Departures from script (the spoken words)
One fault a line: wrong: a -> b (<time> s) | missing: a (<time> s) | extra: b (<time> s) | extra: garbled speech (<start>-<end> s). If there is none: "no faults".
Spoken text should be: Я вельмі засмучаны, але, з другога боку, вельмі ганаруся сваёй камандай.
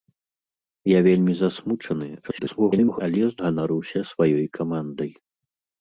extra: garbled speech (2.2-3.0 s)
missing: другога боку вельмі (3.4 s)